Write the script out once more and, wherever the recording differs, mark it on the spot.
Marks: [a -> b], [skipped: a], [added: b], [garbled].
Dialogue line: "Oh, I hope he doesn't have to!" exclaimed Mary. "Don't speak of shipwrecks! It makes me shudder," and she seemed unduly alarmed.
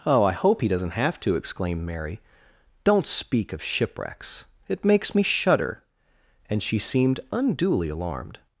"Oh, I hope he doesn't have to!" exclaimed Mary. "Don't speak of shipwrecks! It makes me shudder," and she seemed unduly alarmed.